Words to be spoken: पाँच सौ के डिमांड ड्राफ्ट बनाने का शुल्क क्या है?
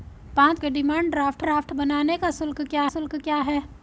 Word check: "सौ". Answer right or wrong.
wrong